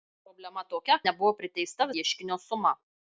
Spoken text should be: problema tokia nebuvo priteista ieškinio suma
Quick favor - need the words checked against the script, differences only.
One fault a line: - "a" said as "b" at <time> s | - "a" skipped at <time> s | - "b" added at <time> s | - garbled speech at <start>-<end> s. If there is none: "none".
none